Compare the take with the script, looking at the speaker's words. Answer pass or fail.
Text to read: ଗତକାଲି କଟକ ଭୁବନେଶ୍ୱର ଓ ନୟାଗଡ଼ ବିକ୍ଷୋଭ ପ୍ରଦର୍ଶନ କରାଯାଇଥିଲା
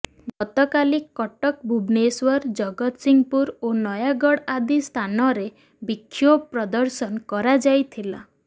fail